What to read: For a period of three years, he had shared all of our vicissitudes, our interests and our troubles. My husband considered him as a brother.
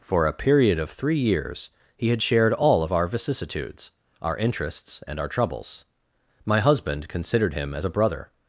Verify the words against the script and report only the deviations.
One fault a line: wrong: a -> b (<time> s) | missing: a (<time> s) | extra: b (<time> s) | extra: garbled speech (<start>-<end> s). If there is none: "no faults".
no faults